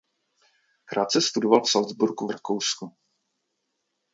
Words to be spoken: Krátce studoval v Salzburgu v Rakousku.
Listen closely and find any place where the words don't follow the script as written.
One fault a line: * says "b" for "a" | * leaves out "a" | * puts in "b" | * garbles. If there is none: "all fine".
all fine